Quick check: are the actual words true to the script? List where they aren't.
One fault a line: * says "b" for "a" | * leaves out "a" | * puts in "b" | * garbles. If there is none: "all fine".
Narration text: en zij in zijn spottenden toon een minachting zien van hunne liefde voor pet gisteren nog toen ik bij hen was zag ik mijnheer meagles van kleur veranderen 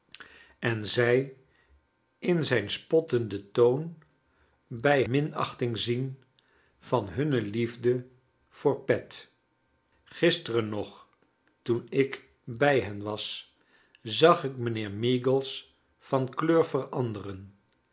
* says "bij" for "een"